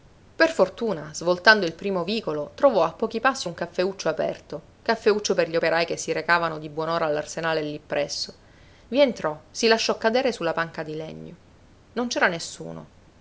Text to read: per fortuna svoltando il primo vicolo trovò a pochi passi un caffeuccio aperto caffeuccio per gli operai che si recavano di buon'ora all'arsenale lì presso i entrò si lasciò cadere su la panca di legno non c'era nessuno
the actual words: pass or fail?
pass